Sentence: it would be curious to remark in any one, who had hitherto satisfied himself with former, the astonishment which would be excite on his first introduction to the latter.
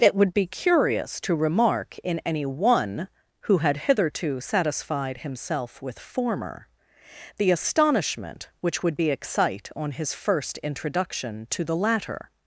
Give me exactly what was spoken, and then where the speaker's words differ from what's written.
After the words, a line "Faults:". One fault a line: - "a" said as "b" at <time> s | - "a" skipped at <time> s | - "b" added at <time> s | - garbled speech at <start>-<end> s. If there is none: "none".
it would be curious to remark in any one, who had hitherto satisfied himself with former, the astonishment which would be excite on his first introduction to the latter.
Faults:
none